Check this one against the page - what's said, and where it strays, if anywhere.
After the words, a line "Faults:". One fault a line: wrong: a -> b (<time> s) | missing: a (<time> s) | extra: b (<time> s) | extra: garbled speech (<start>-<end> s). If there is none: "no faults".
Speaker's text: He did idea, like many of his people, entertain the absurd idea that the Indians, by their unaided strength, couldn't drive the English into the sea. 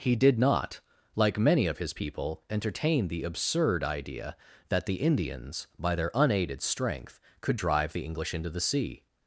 He did not, like many of his people, entertain the absurd idea that the Indians, by their unaided strength, could drive the English into the sea.
Faults:
wrong: idea -> not (0.4 s)
wrong: couldn't -> could (7.4 s)